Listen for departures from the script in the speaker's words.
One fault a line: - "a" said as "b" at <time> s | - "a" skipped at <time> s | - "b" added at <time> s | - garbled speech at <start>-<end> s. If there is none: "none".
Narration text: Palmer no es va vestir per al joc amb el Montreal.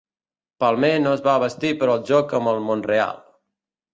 none